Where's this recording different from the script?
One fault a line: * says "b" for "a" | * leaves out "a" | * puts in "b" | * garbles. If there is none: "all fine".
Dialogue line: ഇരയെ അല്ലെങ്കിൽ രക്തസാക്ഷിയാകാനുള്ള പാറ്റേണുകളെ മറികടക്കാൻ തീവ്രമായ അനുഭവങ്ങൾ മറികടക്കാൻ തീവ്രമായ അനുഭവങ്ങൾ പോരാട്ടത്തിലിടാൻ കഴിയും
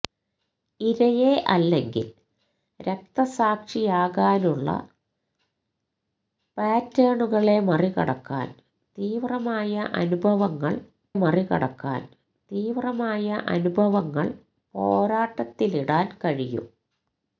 all fine